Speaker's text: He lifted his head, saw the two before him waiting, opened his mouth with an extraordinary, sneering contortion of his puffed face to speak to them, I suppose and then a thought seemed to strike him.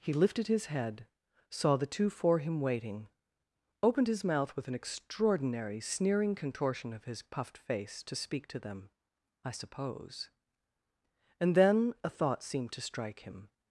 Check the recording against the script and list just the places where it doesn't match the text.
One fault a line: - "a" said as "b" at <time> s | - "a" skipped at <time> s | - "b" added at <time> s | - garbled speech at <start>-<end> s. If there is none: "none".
- "before" said as "for" at 2.1 s